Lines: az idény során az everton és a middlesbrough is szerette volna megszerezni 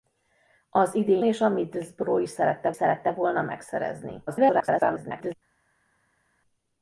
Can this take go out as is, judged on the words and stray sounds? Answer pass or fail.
fail